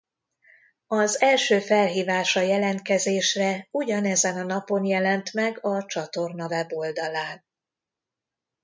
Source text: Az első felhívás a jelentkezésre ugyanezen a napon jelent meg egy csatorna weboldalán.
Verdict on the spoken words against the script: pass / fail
fail